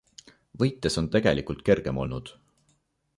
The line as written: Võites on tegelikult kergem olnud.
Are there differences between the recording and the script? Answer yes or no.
no